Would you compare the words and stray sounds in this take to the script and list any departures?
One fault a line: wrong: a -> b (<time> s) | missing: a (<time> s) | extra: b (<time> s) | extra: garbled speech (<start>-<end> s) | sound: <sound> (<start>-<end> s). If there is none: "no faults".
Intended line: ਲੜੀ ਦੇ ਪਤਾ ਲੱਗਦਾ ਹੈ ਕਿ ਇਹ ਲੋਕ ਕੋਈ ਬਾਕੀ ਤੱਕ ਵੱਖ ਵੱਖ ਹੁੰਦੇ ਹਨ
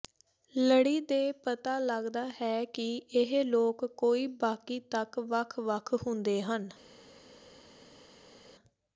no faults